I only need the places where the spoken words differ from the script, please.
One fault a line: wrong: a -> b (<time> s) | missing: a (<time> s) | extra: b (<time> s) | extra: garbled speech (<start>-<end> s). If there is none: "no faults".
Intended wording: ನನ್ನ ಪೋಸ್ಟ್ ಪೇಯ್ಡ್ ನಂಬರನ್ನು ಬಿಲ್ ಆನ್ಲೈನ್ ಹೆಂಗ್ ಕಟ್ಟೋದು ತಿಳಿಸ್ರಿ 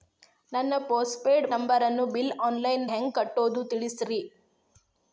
no faults